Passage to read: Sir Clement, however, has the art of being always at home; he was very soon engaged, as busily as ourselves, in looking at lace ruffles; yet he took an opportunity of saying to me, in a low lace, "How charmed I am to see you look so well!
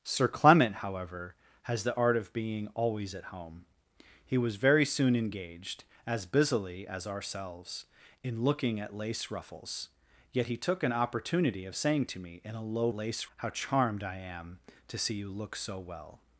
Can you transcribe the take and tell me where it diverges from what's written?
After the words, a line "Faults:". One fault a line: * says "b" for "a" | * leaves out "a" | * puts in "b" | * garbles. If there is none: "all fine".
Sir Clement, however, has the art of being always at home; he was very soon engaged, as busily as ourselves, in looking at lace ruffles; yet he took an opportunity of saying to me, in a low lace, "How charmed I am to see you look so well!
Faults:
all fine